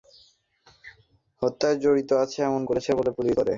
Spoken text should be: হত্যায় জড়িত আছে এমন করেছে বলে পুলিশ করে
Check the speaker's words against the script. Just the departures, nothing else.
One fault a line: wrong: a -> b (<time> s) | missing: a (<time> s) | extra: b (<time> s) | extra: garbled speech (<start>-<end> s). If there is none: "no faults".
no faults